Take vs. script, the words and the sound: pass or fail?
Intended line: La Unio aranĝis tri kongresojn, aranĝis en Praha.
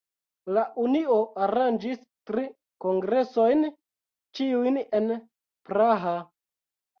fail